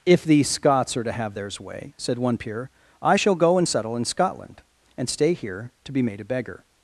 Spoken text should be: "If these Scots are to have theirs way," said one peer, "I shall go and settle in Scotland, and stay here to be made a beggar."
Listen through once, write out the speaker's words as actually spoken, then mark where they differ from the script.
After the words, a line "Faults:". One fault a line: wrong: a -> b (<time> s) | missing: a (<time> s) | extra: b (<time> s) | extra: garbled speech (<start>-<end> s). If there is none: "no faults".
"If these Scots are to have theirs way," said one peer, "I shall go and settle in Scotland, and stay here to be made a beggar."
Faults:
no faults